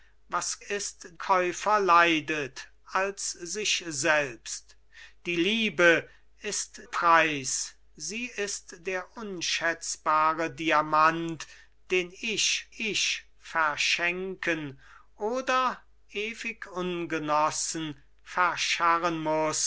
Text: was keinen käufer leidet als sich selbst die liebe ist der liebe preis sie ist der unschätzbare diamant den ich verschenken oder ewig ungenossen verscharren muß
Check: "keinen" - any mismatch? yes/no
yes